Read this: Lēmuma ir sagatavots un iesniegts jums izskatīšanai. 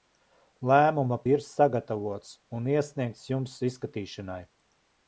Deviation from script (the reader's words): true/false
false